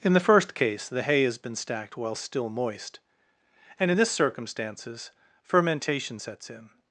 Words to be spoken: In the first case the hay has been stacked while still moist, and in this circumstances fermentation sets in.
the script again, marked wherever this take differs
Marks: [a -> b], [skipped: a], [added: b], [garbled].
In the first case the hay has been stacked while still moist, and in this circumstances fermentation sets in.